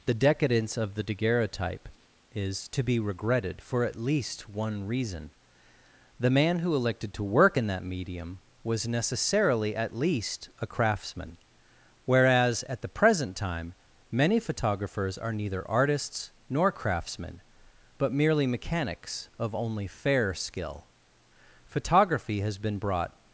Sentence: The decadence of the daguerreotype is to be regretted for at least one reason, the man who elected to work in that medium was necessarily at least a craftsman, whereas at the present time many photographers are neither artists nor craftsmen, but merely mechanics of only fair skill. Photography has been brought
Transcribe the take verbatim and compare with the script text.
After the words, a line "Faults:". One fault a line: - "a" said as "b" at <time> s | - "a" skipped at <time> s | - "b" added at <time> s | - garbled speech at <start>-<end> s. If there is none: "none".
The decadence of the daguerreotype is to be regretted for at least one reason, the man who elected to work in that medium was necessarily at least a craftsman, whereas at the present time many photographers are neither artists nor craftsmen, but merely mechanics of only fair skill. Photography has been brought
Faults:
none